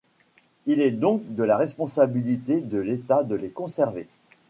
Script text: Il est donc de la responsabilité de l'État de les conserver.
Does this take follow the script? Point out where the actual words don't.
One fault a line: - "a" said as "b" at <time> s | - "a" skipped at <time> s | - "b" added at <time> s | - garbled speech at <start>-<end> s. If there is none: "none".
none